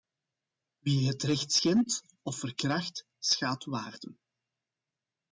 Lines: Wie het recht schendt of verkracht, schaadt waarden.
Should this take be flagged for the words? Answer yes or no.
no